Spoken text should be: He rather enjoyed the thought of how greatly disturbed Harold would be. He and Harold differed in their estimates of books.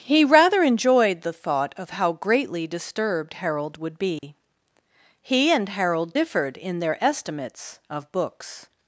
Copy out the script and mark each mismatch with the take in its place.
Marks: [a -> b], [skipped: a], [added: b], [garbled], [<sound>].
He rather enjoyed the thought of how greatly disturbed Harold would be. [dropout] He and Harold differed in their estimates of books.